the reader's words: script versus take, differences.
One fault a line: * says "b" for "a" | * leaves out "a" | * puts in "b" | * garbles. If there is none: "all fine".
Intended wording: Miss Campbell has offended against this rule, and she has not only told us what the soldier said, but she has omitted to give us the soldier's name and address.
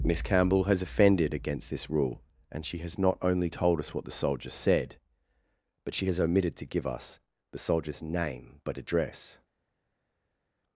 * says "but" for "and"